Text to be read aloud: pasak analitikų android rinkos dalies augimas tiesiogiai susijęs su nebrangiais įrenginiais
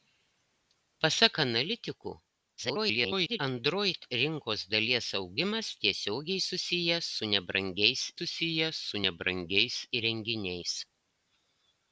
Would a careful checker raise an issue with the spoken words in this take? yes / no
yes